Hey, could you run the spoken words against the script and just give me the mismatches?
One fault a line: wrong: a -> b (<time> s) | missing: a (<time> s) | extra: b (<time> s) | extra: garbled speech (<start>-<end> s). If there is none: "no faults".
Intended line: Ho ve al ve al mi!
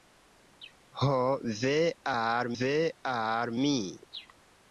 no faults